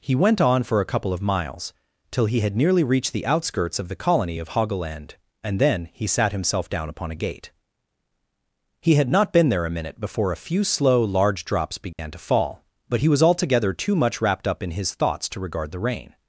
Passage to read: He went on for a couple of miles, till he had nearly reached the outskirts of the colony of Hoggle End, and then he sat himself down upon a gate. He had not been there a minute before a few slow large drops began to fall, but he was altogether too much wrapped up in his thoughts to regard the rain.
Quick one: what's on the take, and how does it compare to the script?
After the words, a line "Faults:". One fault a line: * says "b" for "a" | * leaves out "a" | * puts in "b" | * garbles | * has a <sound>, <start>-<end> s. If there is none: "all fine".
He went on for a couple of miles, till he had nearly reached the outskirts of the colony of Hoggle End, and then he sat himself down upon a gate. He had not been there a minute before a few slow large drops began to fall, but he was altogether too much wrapped up in his thoughts to regard the rain.
Faults:
* has a dropout, 11.9-12.0 s